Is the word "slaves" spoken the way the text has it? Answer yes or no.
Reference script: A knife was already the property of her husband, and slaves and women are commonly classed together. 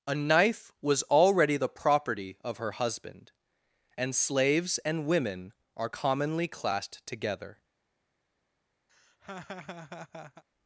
yes